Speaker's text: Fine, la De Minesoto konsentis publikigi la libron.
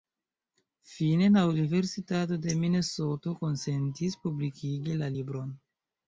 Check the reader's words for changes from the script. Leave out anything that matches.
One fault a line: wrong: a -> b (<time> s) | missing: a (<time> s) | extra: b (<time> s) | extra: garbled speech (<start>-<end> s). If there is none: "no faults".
extra: Universitato (1.5 s)